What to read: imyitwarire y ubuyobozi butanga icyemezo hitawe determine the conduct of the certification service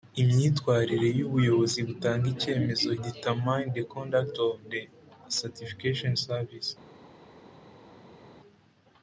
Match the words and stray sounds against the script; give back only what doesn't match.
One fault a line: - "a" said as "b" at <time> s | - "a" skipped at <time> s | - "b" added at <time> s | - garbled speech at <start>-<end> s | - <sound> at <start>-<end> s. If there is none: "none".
- "hitawe" skipped at 2.9 s